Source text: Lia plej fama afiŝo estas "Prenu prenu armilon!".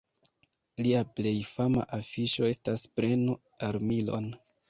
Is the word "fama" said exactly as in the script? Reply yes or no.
yes